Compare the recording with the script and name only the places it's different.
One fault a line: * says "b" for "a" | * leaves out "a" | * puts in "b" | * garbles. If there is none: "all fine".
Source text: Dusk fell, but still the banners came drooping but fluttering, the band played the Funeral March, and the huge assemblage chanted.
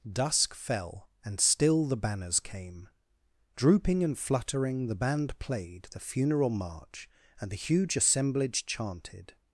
* says "and" for "but"
* says "and" for "but"